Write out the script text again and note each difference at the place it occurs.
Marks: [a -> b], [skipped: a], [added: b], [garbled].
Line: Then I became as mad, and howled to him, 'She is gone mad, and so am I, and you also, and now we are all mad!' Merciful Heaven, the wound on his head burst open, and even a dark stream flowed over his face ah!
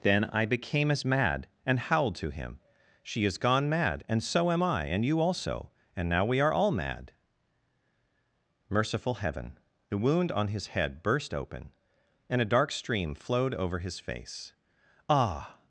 Then I became as mad, and howled to him, 'She is gone mad, and so am I, and you also, and now we are all mad!' Merciful Heaven, the wound on his head burst open, and [skipped: even] a dark stream flowed over his face ah!